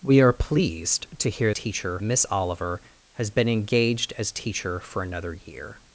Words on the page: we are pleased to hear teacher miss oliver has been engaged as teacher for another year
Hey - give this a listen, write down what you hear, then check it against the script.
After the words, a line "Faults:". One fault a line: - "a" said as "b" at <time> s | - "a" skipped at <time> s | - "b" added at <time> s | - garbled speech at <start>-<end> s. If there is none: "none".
we are pleased to hear teacher miss oliver has been engaged as teacher for another year
Faults:
none